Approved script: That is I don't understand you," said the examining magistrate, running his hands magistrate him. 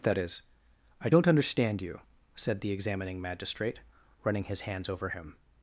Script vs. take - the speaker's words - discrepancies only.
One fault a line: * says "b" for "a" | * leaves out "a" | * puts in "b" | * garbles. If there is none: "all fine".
* says "over" for "magistrate"